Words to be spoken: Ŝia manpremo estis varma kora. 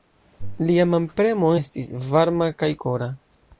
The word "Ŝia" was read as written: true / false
false